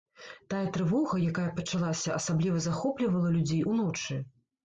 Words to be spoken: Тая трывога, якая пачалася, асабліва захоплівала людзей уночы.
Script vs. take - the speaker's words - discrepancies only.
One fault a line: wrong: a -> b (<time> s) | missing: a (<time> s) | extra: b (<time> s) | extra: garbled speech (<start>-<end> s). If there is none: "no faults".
no faults